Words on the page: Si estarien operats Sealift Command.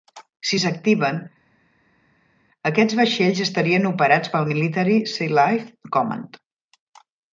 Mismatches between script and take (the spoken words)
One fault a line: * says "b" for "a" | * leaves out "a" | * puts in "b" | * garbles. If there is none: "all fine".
* puts in "s'activen aquests vaixells"
* puts in "pel Military"